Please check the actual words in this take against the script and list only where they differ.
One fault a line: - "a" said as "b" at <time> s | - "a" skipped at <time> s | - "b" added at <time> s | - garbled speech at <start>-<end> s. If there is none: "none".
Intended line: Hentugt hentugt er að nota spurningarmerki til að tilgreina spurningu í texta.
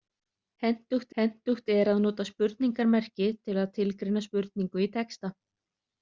none